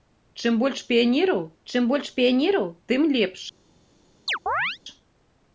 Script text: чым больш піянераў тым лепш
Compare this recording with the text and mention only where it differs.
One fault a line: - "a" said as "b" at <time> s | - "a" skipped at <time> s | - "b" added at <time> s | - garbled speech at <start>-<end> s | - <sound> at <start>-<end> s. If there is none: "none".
- "чым больш піянераў" added at 1.7 s
- chirp at 4.3-4.8 s